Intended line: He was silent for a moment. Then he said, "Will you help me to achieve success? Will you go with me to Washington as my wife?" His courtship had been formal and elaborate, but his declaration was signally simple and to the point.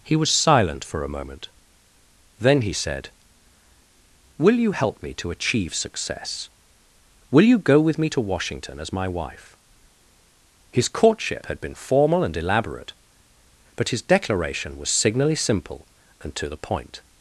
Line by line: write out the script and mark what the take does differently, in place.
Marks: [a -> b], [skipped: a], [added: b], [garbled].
He was silent for a moment. Then he said, "Will you help me to achieve success? Will you go with me to Washington as my wife?" His courtship had been formal and elaborate, but his declaration was signally simple and to the point.